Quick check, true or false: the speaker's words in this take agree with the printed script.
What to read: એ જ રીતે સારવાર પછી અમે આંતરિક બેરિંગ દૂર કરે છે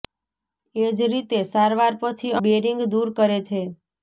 false